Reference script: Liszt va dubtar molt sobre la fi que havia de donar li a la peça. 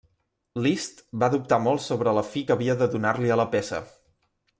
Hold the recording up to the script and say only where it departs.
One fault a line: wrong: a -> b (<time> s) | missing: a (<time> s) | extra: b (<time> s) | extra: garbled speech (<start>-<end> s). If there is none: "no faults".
no faults